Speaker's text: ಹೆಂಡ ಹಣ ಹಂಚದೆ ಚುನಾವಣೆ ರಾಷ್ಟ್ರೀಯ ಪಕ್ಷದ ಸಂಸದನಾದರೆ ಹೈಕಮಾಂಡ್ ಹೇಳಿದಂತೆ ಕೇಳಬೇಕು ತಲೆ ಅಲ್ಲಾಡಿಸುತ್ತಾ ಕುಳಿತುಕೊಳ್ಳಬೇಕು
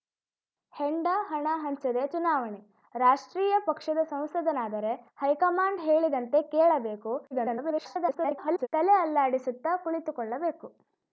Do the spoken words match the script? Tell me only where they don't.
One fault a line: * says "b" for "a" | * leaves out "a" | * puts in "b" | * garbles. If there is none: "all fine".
* garbles